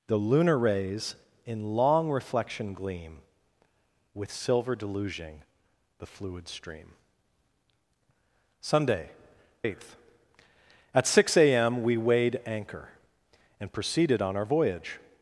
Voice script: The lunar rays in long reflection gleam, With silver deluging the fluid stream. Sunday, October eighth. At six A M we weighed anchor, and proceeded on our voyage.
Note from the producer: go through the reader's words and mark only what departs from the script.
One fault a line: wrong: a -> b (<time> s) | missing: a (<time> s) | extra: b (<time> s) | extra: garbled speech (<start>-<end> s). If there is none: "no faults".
missing: October (9.1 s)